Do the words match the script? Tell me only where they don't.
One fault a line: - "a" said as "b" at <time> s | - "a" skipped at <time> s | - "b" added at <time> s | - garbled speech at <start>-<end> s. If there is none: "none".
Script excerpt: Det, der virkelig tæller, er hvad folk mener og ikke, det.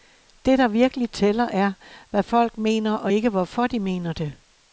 - "hvorfor de mener" added at 3.3 s